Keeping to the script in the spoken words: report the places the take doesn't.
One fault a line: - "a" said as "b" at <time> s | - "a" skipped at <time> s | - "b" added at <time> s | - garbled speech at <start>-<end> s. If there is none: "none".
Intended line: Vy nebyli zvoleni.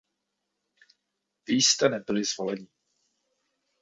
- "jste" added at 1.6 s